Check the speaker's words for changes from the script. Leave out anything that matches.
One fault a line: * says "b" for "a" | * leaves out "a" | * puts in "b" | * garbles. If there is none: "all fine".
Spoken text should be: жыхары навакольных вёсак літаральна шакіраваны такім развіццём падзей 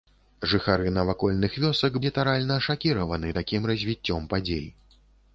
all fine